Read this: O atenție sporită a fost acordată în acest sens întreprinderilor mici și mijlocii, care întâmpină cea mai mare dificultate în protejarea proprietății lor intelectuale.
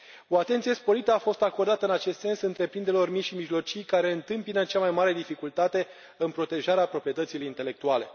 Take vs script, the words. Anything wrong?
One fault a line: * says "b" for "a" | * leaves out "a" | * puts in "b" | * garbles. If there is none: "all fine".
* leaves out "lor"